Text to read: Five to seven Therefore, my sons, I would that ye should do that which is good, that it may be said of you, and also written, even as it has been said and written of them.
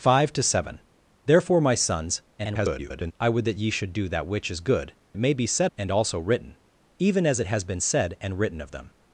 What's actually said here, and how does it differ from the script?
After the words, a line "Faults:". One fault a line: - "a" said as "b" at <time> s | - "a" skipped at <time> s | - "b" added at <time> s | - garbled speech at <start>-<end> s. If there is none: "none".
Five to seven Therefore, my sons, [garbled] I would that ye should do that which is good, it may be said and also written, even as it has been said and written of them.
Faults:
- garbled speech at 2.4-3.1 s
- "that" skipped at 4.9 s
- "of you" skipped at 5.7 s